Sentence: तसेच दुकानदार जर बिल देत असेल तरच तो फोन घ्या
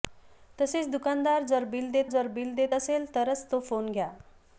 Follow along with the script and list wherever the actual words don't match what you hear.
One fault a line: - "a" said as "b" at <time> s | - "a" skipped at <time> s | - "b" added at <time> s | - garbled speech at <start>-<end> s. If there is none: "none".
- "जर बिल देत" added at 2.1 s